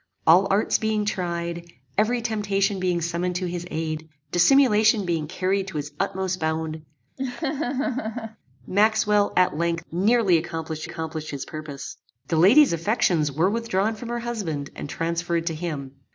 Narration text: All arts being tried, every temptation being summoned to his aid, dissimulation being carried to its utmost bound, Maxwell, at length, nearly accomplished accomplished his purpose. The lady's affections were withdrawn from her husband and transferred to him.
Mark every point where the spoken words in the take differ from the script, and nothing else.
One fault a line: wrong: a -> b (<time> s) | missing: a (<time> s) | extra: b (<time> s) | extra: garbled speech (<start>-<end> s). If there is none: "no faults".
no faults